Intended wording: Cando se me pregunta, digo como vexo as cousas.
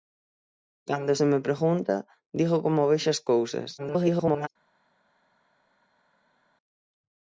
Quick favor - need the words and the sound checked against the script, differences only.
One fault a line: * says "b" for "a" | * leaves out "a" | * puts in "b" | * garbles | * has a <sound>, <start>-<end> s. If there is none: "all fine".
* garbles